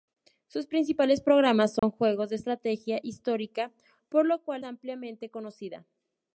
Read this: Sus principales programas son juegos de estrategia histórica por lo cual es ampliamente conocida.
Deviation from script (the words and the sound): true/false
true